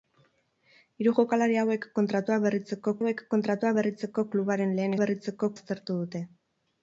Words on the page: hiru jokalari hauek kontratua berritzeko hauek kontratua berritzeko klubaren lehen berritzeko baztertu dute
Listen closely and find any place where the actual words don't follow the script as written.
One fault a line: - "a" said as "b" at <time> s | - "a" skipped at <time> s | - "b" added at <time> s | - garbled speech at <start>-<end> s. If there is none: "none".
none